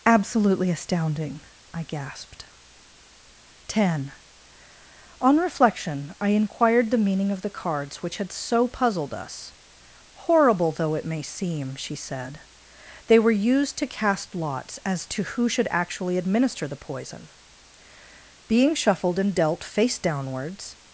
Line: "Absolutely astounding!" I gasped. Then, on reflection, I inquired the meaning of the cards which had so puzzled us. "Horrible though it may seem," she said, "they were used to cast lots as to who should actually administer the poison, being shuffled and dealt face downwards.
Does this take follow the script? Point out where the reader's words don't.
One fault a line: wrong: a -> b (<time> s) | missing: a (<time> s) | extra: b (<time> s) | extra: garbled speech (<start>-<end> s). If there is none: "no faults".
wrong: Then -> Ten (3.7 s)